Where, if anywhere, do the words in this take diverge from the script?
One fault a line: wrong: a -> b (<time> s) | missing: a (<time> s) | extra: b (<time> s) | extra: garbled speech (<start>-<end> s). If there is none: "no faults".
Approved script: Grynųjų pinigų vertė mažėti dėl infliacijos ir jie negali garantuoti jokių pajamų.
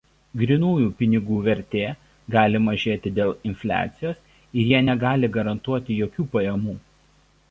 extra: gali (2.4 s)